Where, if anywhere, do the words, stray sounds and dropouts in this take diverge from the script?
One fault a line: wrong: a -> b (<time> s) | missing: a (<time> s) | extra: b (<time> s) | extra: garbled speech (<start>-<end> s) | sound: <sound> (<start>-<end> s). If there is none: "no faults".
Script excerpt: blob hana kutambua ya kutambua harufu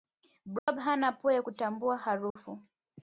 sound: dropout (0.6-0.7 s)
wrong: kutambua -> pua (1.1 s)
sound: dropout (2.3-2.4 s)